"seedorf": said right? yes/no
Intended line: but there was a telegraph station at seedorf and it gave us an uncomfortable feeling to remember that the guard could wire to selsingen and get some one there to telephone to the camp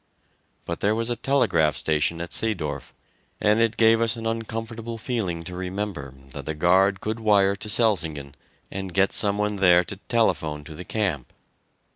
yes